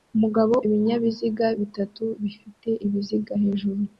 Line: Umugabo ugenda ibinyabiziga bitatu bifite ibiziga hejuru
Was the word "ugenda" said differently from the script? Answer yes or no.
yes